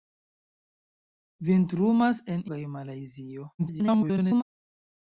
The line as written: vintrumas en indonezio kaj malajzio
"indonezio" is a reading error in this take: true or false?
true